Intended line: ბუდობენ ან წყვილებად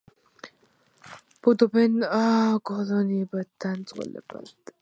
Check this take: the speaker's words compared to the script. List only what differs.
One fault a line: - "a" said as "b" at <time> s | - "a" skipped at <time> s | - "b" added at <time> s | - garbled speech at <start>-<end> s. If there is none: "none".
- "კოლონიებად" added at 2.7 s